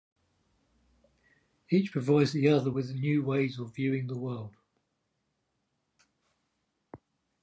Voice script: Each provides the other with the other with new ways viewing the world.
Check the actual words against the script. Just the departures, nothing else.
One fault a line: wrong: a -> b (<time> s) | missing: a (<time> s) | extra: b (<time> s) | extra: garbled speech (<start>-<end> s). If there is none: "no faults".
missing: the other with (2.9 s)
extra: of (3.6 s)